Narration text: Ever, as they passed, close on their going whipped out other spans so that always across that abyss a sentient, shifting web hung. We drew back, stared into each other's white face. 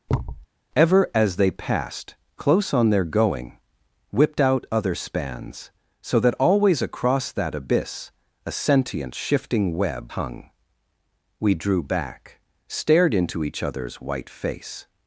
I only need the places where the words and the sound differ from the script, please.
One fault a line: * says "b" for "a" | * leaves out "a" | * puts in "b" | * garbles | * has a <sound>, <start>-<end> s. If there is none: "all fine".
* has a thud, 0.1-0.5 s